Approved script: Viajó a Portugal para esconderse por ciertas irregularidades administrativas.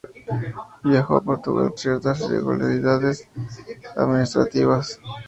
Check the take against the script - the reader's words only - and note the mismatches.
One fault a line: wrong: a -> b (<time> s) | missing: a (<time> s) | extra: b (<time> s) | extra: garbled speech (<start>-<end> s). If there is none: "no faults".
missing: para esconderse por (1.7 s)